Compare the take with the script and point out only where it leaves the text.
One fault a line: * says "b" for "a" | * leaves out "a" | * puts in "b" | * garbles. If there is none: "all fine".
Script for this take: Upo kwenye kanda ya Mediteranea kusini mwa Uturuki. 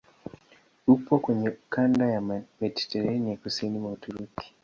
all fine